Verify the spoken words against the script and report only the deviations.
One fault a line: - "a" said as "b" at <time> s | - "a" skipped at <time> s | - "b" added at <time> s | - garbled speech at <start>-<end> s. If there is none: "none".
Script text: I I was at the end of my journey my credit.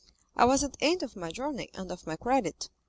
- "I" skipped at 0.5 s
- "and of" added at 1.8 s